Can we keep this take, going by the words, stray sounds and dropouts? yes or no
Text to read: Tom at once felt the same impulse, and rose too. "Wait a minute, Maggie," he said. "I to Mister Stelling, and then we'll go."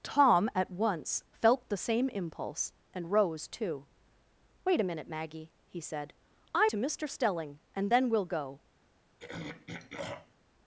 no